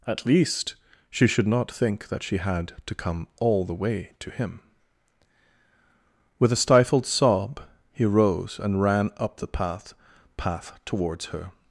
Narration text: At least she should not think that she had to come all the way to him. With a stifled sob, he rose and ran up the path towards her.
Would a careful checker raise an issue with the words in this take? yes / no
yes